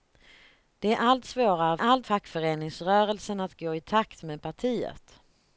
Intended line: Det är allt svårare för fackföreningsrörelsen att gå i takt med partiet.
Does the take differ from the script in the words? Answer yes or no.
yes